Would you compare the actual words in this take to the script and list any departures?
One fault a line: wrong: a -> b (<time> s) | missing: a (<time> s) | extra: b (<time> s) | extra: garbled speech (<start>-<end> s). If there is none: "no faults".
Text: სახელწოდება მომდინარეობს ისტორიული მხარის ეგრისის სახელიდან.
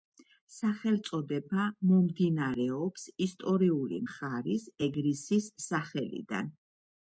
no faults